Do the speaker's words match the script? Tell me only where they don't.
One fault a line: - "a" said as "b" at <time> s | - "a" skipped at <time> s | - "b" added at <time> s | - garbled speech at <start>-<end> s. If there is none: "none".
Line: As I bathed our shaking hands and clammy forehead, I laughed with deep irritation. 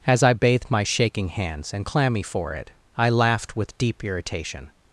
- "our" said as "my" at 0.7 s